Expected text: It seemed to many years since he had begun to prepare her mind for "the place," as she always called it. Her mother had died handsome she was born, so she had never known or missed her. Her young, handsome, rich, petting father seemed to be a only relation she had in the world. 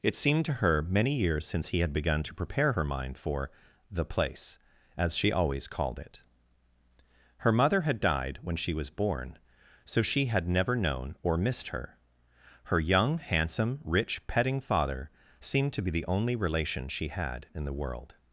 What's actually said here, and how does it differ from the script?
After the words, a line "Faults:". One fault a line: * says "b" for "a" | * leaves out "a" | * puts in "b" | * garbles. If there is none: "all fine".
It seemed to her many years since he had begun to prepare her mind for "the place," as she always called it. Her mother had died when she was born, so she had never known or missed her. Her young, handsome, rich, petting father seemed to be the only relation she had in the world.
Faults:
* puts in "her"
* says "when" for "handsome"
* says "the" for "a"